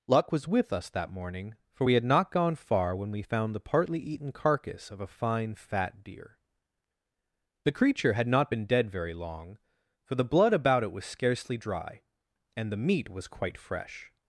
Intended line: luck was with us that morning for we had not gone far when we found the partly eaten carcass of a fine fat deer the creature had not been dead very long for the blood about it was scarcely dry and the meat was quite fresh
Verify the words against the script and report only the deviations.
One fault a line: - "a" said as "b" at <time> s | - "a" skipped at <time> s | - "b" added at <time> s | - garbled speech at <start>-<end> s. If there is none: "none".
none